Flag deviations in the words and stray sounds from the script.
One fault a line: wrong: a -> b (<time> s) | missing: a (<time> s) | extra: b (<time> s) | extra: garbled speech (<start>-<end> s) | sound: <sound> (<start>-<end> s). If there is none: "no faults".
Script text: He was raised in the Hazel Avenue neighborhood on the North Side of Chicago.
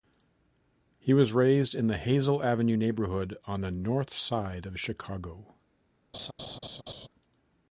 sound: laugh (6.1-7.1 s)